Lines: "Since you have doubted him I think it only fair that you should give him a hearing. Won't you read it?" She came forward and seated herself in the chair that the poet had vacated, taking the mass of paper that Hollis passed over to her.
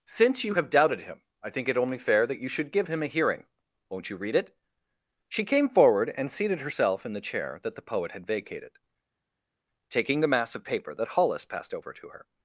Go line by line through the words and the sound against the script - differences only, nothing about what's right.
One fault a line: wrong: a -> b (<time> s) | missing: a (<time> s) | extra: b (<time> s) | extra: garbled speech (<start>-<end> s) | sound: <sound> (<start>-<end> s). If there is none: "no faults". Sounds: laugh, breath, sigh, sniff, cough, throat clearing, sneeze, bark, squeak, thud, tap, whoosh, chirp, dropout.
no faults